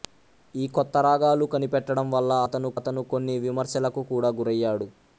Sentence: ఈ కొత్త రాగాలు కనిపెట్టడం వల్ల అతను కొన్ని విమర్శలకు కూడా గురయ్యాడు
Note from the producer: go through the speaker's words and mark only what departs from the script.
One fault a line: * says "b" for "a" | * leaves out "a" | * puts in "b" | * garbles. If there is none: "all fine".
* puts in "అతను"